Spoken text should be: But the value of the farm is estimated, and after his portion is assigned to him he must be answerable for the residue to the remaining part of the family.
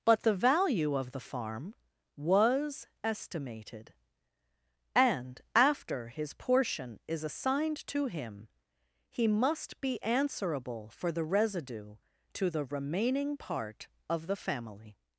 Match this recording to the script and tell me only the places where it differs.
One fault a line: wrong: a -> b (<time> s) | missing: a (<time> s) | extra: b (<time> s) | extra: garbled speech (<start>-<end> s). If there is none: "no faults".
wrong: is -> was (2.1 s)